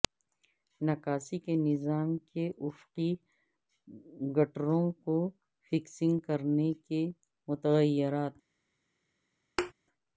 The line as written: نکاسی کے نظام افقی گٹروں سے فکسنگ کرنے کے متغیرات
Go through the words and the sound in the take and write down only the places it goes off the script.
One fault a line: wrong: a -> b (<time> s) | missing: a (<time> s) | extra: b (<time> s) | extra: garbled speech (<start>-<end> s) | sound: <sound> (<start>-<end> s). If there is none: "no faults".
extra: کے (2.3 s)
wrong: سے -> کو (5.0 s)
sound: thud (9.6-9.7 s)